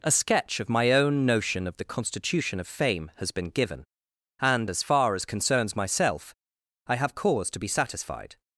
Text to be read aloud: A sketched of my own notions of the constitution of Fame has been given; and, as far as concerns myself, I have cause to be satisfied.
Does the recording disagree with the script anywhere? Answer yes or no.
yes